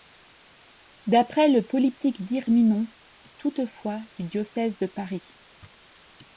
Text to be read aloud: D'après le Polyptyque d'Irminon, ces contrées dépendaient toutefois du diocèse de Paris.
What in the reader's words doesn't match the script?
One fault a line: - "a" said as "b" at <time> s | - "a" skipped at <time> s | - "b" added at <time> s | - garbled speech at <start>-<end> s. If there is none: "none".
- "ces contrées dépendaient" skipped at 2.9 s